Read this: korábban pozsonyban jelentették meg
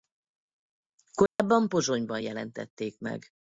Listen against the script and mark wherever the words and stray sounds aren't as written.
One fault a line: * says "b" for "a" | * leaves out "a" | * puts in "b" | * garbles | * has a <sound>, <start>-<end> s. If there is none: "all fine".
* has a dropout, 1.3-1.4 s